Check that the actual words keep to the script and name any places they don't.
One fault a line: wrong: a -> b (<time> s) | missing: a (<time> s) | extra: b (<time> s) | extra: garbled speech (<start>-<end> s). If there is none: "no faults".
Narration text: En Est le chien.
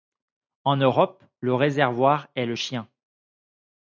extra: Europe le réservoir (0.8 s)